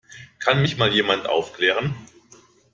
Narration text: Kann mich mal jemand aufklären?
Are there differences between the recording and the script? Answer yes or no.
no